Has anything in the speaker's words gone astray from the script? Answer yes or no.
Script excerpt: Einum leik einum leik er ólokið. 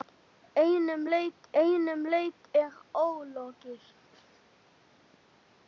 no